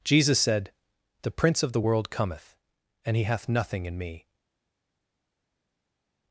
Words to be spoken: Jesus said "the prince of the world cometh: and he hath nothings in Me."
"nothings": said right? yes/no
no